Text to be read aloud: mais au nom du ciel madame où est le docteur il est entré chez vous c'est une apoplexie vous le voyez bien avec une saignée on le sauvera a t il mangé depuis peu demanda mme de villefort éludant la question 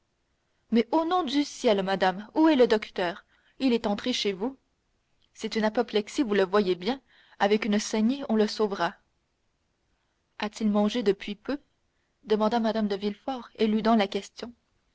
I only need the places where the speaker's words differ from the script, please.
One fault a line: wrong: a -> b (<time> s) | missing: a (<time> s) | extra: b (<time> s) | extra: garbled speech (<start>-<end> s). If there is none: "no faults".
no faults